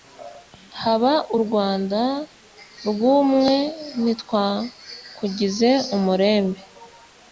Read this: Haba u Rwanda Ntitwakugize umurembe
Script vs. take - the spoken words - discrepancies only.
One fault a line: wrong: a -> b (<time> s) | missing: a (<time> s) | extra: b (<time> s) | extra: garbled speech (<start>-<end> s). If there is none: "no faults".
extra: rw'umwe (2.9 s)